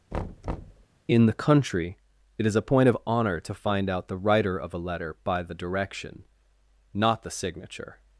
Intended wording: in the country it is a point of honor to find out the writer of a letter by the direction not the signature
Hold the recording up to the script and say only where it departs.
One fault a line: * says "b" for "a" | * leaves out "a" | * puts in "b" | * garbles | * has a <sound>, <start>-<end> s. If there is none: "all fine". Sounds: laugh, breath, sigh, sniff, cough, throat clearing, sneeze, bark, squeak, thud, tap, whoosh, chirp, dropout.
* has a thud, 0.1-0.9 s